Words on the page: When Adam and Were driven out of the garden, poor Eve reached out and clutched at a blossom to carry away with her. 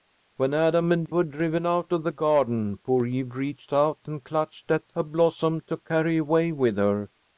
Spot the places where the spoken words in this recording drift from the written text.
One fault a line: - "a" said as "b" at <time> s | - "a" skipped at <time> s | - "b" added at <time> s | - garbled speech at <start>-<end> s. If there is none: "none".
none